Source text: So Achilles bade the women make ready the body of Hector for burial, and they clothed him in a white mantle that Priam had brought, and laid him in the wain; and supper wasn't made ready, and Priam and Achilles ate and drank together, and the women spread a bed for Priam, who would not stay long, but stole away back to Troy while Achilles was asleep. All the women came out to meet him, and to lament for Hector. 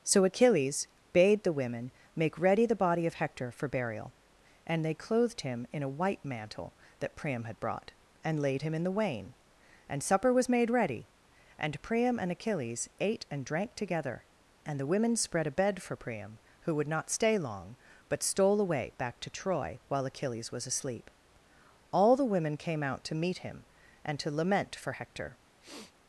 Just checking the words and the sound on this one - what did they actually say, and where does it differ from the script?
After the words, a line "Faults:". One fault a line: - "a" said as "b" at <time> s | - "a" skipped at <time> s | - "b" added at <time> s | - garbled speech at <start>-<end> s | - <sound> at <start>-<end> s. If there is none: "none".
So Achilles bade the women make ready the body of Hector for burial, and they clothed him in a white mantle that Priam had brought, and laid him in the wain; and supper was made ready, and Priam and Achilles ate and drank together, and the women spread a bed for Priam, who would not stay long, but stole away back to Troy while Achilles was asleep. All the women came out to meet him, and to lament for Hector.
Faults:
- "wasn't" said as "was" at 10.3 s
- sniff at 25.6-25.9 s